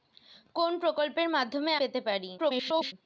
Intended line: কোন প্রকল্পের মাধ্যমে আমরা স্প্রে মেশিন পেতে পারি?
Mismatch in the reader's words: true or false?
true